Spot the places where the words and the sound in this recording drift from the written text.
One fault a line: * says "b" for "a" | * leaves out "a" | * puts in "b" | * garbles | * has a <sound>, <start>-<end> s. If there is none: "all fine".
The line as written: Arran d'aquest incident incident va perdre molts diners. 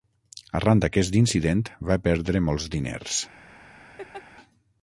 * leaves out "incident"
* has a laugh, 4.0-4.2 s